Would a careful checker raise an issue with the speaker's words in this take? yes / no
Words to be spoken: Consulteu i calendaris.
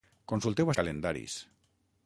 no